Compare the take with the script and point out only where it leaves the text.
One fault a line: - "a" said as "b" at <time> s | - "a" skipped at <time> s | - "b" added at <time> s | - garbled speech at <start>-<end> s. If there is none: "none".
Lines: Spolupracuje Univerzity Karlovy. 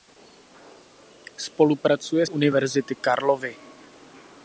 none